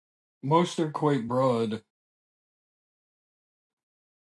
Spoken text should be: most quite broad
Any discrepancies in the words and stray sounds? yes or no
yes